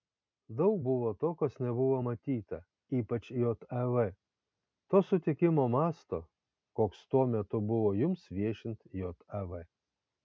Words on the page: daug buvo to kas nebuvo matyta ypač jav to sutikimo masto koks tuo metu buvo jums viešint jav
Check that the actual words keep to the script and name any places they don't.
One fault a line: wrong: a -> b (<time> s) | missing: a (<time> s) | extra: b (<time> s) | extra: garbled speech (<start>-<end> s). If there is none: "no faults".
no faults